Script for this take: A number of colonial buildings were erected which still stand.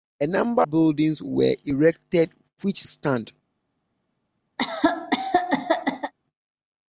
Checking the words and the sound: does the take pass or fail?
fail